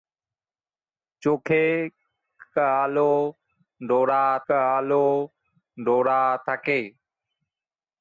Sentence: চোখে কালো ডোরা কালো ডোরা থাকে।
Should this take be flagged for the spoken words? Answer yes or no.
no